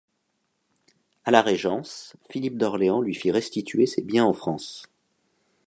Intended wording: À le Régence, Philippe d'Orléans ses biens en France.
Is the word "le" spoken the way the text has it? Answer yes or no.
no